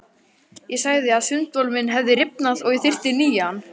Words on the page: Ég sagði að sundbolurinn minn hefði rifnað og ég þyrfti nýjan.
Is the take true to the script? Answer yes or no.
yes